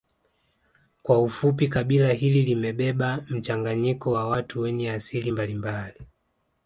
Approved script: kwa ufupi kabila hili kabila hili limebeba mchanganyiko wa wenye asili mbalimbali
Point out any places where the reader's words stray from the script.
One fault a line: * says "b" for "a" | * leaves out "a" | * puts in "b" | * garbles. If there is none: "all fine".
* leaves out "kabila hili"
* puts in "watu"